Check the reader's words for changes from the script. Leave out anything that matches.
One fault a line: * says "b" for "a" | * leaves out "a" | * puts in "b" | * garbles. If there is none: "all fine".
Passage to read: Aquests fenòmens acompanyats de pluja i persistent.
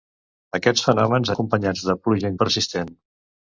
all fine